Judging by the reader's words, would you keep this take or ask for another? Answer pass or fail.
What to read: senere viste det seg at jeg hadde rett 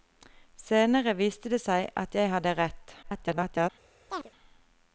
fail